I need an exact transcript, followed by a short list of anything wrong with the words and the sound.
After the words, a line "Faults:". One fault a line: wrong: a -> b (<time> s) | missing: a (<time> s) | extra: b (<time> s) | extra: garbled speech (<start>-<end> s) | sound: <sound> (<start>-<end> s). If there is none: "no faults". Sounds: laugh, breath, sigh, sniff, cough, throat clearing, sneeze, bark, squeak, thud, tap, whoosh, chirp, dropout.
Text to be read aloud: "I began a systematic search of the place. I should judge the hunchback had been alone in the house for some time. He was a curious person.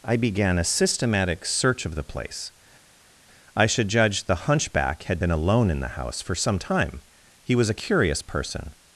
"I began a systematic search of the place. I should judge the hunchback had been alone in the house for some time. He was a curious person.
Faults:
no faults